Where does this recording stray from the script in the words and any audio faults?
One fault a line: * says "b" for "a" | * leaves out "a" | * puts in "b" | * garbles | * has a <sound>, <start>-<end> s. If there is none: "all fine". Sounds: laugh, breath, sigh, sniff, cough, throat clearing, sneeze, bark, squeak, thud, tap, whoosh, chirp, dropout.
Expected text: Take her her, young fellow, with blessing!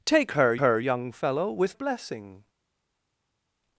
all fine